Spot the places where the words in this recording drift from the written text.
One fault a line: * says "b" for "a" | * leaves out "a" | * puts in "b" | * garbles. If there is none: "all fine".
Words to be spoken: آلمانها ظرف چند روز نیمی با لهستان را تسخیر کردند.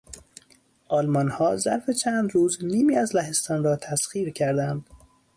* says "از" for "با"